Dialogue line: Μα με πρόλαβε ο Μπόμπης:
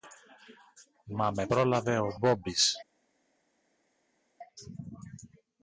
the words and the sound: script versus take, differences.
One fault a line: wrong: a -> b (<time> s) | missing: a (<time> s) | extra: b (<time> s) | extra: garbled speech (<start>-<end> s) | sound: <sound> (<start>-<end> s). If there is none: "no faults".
no faults